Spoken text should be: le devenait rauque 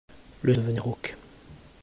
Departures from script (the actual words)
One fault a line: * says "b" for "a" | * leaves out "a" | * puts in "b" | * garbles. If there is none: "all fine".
all fine